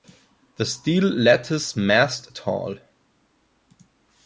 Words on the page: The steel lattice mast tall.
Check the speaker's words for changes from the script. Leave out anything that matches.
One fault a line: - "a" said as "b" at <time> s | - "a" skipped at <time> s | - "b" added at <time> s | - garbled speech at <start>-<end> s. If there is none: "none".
none